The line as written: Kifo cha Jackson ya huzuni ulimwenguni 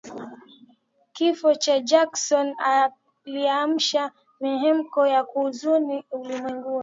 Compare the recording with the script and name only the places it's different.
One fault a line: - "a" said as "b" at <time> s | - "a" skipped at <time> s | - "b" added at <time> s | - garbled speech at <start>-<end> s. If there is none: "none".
- "kiliamsha mihemko" added at 3.2 s